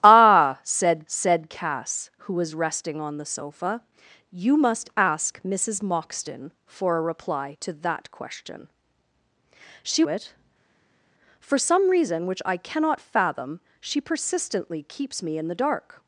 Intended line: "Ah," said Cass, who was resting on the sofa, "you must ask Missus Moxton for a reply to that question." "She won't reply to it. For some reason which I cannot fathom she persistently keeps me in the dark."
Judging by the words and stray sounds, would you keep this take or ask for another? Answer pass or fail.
fail